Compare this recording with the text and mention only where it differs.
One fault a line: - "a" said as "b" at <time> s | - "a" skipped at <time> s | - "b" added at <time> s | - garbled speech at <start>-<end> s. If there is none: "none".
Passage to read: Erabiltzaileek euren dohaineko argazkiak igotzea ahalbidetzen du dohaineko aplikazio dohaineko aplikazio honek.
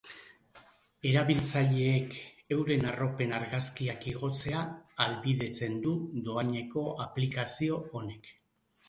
- "dohaineko" said as "arropen" at 2.9 s
- "dohaineko aplikazio" skipped at 7.8 s